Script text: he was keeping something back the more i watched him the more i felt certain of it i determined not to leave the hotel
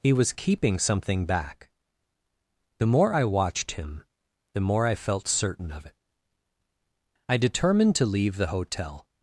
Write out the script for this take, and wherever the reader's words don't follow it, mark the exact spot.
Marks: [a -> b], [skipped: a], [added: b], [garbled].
he was keeping something back the more i watched him the more i felt certain of it i determined [skipped: not] to leave the hotel